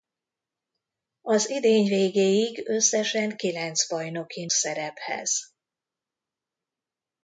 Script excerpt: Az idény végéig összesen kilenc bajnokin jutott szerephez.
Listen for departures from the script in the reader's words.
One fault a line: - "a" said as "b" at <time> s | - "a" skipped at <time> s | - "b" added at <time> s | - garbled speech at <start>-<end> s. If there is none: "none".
- "jutott" skipped at 4.5 s